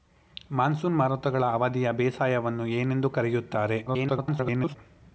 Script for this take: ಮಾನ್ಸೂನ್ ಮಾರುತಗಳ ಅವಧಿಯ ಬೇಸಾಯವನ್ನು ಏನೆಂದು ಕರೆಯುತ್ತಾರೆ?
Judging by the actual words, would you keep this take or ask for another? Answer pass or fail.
fail